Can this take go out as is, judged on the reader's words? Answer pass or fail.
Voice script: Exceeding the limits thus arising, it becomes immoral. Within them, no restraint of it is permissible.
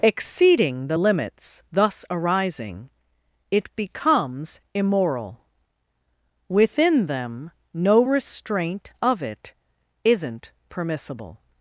fail